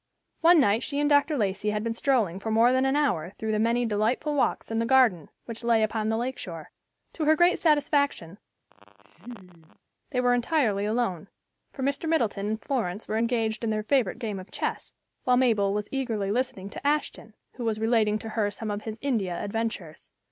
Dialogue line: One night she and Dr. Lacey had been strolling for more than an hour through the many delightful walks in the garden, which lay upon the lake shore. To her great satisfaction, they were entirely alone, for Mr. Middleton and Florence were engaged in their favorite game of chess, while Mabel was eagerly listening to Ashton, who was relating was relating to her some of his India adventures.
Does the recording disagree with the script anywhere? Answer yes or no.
yes